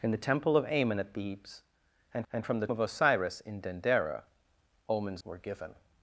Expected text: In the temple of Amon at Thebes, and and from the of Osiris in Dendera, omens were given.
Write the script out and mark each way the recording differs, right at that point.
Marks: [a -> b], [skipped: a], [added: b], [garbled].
In the temple of Amon at Thebes, and and from the of Osiris in Dendera, omens were given.